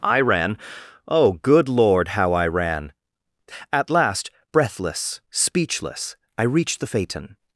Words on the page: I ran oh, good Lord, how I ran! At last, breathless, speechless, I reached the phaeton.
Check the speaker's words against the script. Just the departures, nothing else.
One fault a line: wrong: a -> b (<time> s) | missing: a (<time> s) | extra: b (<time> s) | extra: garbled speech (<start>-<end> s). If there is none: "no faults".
no faults